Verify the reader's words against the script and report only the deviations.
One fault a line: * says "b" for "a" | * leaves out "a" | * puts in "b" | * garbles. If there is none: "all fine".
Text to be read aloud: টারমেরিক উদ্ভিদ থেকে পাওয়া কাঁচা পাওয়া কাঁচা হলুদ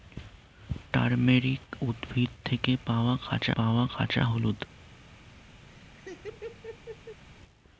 all fine